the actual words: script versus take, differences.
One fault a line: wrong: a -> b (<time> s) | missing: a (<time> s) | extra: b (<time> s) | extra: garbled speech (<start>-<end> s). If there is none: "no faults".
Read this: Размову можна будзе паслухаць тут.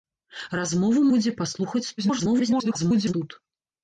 missing: можна (1.0 s)
extra: garbled speech (2.0-3.1 s)